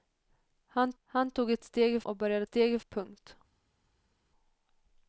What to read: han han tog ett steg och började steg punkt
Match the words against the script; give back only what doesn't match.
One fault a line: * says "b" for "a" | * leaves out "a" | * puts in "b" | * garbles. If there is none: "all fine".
all fine